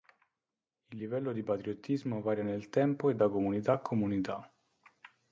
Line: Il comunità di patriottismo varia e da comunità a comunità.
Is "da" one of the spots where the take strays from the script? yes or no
no